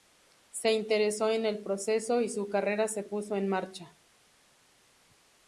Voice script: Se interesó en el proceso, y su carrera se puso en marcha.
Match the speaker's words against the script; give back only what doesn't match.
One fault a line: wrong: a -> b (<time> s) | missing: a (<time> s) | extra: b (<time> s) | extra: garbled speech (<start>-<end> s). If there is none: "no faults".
no faults